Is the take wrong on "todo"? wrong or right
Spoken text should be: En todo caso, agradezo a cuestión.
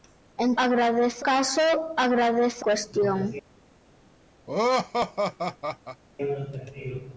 wrong